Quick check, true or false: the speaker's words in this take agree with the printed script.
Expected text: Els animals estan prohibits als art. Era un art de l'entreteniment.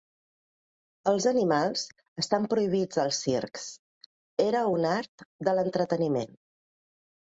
false